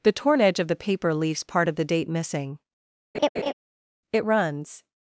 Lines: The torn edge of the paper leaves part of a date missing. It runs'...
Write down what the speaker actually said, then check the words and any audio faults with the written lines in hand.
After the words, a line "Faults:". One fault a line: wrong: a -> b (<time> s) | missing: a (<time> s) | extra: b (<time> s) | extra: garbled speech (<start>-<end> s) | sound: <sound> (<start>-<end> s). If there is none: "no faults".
The torn edge of the paper leaves part of the date missing. It runs'...
Faults:
wrong: a -> the (1.8 s)
sound: laugh (3.1-3.5 s)